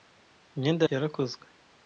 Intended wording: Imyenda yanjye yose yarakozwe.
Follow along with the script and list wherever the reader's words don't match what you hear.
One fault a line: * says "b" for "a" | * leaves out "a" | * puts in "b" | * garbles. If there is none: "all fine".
* leaves out "yanjye yose"